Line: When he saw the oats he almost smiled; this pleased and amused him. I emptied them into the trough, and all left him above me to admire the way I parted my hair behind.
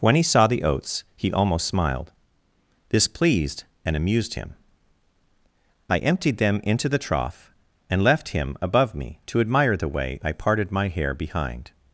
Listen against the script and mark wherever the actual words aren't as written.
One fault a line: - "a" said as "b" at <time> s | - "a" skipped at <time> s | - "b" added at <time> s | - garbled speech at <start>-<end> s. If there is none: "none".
- "all" skipped at 8.0 s